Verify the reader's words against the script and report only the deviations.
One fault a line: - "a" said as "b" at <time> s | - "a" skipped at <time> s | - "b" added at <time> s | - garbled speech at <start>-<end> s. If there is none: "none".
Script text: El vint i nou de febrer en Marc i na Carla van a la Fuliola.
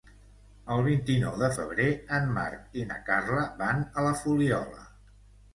none